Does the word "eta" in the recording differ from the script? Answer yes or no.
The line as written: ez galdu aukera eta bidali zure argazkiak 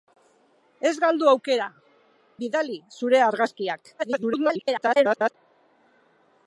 yes